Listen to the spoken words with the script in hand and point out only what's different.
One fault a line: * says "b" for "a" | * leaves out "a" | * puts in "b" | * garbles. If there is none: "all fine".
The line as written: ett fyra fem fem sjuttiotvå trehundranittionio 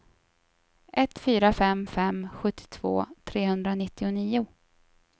all fine